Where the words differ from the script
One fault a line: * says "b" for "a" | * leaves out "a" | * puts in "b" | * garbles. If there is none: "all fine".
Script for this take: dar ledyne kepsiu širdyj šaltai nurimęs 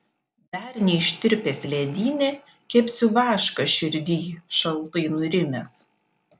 * puts in "neištirpęs"
* puts in "vašką"